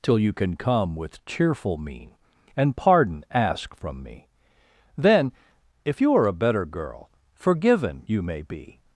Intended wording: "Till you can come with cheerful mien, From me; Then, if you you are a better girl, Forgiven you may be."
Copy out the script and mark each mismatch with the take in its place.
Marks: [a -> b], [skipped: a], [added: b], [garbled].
"Till you can come with cheerful mien, [added: And pardon ask] From me; Then, if you [skipped: you] are a better girl, Forgiven you may be."